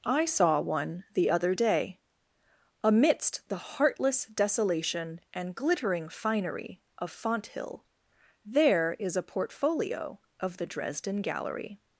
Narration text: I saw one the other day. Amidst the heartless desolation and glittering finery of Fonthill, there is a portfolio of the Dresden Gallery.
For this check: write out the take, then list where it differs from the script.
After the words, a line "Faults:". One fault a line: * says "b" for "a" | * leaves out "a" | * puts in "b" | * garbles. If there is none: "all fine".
I saw one the other day. Amidst the heartless desolation and glittering finery of Fonthill, there is a portfolio of the Dresden Gallery.
Faults:
all fine